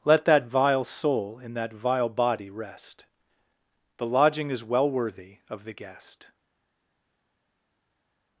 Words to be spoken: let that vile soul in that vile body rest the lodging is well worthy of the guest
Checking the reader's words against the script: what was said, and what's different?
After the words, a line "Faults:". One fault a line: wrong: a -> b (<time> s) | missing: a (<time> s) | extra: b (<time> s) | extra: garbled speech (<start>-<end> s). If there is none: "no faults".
let that vile soul in that vile body rest the lodging is well worthy of the guest
Faults:
no faults